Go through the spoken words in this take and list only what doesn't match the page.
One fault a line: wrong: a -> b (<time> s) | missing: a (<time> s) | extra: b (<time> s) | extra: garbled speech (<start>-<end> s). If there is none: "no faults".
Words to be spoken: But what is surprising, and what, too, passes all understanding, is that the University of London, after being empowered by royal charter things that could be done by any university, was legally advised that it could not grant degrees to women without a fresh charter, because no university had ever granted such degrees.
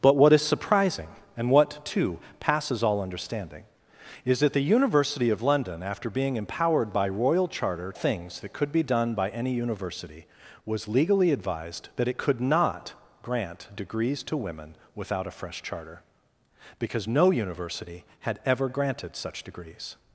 no faults